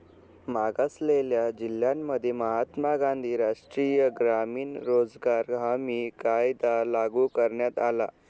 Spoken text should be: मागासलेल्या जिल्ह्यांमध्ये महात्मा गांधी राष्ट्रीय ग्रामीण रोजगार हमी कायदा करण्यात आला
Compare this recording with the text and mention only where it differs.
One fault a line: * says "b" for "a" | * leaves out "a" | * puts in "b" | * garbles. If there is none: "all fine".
* puts in "लागू"